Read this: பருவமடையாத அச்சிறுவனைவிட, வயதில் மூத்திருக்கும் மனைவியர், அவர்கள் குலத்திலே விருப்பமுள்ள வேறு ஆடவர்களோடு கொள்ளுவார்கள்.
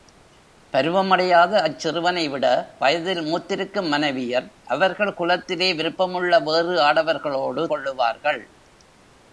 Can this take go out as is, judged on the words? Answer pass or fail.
pass